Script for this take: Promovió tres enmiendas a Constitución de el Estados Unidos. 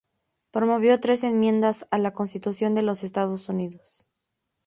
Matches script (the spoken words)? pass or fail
fail